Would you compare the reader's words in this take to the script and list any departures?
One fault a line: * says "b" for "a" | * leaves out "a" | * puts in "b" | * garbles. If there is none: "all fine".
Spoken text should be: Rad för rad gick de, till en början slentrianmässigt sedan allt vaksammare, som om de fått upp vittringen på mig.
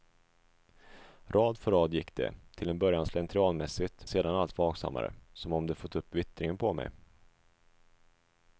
all fine